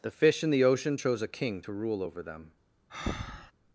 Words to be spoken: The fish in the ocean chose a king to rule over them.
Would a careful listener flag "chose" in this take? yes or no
no